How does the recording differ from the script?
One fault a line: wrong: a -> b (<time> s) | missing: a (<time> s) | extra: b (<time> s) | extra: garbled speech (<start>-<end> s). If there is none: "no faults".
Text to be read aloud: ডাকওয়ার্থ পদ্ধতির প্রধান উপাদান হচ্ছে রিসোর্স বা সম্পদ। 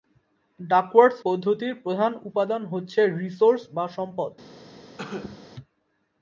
no faults